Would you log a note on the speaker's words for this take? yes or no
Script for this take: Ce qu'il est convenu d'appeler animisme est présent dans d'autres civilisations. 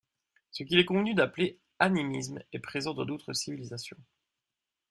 no